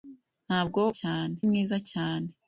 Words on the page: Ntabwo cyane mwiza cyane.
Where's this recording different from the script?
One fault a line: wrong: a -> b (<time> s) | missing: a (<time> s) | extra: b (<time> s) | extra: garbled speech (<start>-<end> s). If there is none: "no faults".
no faults